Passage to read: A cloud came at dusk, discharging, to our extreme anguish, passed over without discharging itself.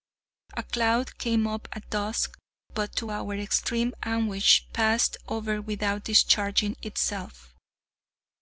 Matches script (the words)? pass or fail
fail